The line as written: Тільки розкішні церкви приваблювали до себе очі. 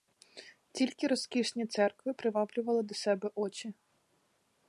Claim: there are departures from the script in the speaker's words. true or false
false